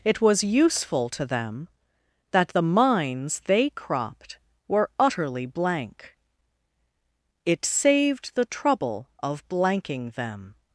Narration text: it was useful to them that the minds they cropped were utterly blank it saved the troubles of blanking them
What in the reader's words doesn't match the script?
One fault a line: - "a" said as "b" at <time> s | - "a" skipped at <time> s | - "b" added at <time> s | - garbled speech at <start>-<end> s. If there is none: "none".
- "troubles" said as "trouble" at 8.4 s